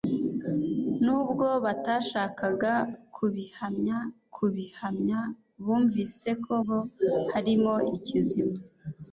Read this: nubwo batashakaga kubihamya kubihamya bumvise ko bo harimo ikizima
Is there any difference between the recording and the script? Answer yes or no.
no